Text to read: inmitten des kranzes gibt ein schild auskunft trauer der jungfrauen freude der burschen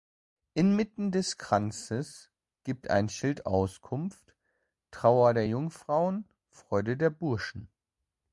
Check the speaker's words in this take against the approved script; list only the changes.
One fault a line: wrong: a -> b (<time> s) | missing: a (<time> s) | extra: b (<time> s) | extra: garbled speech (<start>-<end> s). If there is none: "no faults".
no faults